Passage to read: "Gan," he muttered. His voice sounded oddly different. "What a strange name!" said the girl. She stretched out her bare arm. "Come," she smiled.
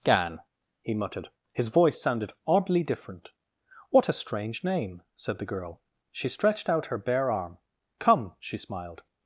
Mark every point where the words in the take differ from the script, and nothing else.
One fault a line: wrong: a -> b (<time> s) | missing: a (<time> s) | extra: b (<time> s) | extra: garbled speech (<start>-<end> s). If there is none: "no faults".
no faults